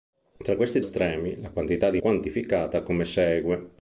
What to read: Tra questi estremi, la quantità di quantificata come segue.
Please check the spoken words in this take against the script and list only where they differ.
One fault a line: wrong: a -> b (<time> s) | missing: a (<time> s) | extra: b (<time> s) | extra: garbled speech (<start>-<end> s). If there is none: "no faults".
no faults